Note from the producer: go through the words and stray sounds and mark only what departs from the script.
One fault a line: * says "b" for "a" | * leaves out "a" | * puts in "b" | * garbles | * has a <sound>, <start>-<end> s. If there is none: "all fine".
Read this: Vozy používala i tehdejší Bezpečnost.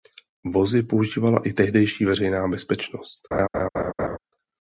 * puts in "Veřejná"
* has a laugh, 3.3-4.2 s